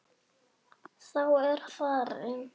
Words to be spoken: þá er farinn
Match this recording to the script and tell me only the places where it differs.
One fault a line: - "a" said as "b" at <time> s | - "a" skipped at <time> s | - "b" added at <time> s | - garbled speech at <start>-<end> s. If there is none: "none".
none